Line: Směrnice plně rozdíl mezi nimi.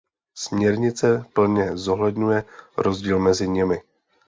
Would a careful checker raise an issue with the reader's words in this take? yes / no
yes